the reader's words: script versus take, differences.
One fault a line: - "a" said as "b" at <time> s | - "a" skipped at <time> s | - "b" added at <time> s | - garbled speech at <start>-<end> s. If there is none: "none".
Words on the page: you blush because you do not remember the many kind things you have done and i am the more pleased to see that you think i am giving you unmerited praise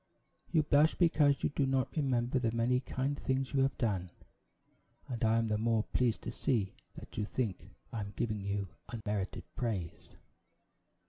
none